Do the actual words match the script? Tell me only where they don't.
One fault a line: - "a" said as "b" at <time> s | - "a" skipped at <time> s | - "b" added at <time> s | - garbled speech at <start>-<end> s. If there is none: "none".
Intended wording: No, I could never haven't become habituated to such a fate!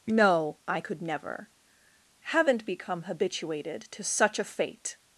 none